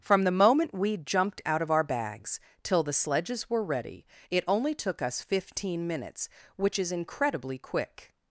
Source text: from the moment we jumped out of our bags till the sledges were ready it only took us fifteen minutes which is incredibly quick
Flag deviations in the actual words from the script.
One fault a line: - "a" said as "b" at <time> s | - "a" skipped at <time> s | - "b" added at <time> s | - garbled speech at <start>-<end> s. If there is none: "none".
none